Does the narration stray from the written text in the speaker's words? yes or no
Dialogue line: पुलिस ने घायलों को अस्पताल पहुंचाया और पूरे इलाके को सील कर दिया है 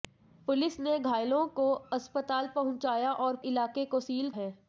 yes